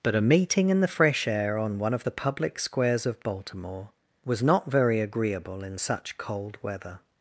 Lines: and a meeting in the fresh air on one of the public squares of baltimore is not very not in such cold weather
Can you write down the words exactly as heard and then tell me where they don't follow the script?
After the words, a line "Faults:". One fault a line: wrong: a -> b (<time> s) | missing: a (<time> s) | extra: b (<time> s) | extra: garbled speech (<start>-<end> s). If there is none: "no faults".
but a meeting in the fresh air on one of the public squares of baltimore was not very agreeable in such cold weather
Faults:
wrong: and -> but (0.0 s)
wrong: is -> was (4.2 s)
wrong: not -> agreeable (5.0 s)